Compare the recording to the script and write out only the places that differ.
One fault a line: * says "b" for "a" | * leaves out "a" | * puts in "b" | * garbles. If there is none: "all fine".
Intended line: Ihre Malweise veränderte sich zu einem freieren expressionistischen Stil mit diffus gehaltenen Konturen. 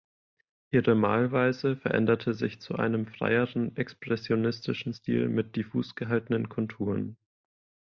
all fine